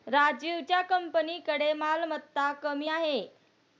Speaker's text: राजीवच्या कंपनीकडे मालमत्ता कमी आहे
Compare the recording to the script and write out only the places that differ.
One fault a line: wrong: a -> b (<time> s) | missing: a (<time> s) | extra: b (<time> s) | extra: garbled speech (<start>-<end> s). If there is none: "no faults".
no faults